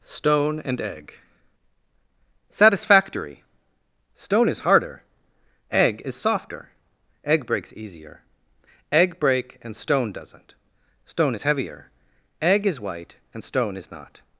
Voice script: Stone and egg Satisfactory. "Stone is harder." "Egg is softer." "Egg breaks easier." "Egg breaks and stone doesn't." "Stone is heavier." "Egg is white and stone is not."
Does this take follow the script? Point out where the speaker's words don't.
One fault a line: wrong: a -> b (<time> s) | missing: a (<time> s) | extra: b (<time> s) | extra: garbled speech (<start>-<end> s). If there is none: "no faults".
wrong: breaks -> break (9.2 s)